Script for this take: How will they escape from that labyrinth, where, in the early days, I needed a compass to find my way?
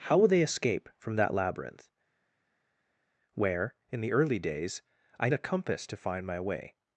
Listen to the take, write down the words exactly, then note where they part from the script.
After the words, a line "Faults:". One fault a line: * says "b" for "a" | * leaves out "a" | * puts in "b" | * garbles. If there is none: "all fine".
How will they escape from that labyrinth, where, in the early days, I a compass to find my way?
Faults:
* leaves out "needed"